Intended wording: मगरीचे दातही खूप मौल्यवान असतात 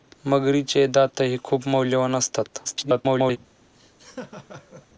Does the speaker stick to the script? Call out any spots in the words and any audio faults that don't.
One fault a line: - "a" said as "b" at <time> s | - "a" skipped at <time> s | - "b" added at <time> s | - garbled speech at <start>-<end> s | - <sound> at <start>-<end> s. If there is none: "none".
- garbled speech at 2.6-3.4 s
- laugh at 3.7-4.9 s